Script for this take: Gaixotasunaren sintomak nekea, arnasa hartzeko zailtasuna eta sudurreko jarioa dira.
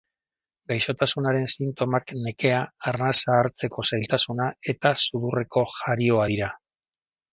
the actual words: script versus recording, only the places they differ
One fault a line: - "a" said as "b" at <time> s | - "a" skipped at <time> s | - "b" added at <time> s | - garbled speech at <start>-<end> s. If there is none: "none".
none